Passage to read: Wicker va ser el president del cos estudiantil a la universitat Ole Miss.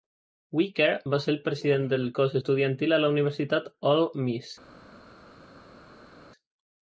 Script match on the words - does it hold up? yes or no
yes